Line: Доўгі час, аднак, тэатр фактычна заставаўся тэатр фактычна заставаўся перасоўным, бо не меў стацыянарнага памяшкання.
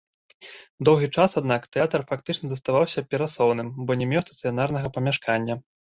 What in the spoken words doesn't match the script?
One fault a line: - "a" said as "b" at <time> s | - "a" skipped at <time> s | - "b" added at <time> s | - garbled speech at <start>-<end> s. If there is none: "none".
- "тэатр фактычна заставаўся" skipped at 3.0 s